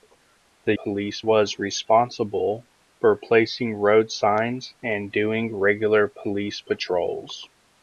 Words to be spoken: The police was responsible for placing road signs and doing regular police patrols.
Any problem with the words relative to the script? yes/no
no